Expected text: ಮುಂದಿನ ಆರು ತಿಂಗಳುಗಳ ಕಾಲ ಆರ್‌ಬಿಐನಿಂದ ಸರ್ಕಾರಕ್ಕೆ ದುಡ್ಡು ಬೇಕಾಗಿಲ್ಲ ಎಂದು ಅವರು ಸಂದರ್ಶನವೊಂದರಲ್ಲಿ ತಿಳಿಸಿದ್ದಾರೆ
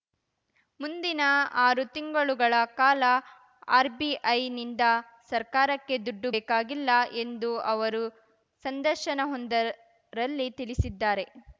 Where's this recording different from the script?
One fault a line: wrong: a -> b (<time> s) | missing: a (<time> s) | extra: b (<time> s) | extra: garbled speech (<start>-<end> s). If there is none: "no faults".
no faults